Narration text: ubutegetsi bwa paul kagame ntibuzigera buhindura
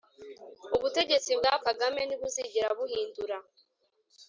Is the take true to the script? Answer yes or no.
no